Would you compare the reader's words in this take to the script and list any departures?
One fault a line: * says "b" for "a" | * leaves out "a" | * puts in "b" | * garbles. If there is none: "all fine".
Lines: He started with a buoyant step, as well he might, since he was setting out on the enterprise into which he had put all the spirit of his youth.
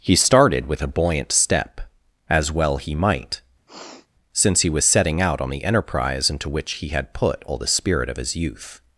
all fine